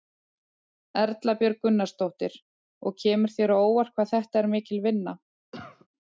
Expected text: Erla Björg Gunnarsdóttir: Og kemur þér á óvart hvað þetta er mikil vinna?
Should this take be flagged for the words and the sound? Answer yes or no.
yes